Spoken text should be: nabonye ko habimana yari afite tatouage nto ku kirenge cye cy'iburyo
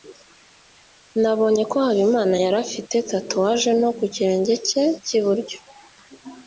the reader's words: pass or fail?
pass